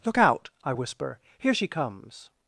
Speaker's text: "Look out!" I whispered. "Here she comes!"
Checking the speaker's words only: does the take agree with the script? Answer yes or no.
no